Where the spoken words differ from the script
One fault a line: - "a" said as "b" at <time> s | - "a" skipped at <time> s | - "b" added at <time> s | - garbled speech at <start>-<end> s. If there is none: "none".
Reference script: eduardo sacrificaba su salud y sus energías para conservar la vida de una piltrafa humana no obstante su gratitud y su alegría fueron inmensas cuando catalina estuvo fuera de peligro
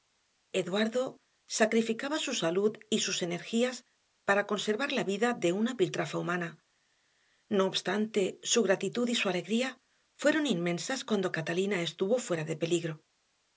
none